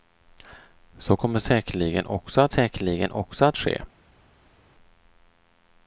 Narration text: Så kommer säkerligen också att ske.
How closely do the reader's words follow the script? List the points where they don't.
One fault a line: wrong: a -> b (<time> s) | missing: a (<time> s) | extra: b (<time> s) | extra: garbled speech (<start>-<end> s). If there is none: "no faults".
extra: säkerligen också att (2.5 s)